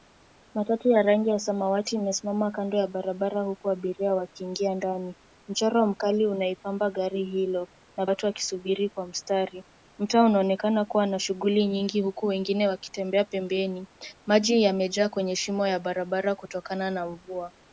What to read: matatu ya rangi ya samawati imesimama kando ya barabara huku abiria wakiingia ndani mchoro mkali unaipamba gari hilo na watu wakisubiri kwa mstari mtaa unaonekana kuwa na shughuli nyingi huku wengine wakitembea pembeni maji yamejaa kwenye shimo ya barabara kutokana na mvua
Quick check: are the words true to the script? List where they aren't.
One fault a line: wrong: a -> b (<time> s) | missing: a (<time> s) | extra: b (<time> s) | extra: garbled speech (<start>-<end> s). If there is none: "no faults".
no faults